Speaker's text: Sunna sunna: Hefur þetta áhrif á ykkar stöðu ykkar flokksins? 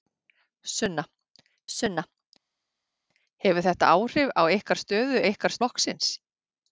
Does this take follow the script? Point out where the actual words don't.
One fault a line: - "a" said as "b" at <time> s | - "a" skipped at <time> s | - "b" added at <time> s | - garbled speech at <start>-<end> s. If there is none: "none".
none